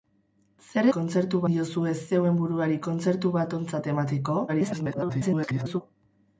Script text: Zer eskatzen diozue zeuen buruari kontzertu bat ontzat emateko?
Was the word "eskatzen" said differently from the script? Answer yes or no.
yes